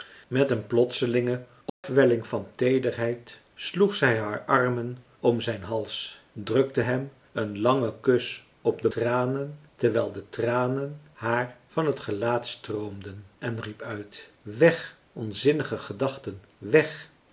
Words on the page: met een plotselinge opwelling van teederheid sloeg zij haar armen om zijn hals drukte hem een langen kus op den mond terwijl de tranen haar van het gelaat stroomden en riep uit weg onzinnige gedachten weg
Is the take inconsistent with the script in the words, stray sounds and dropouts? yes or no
yes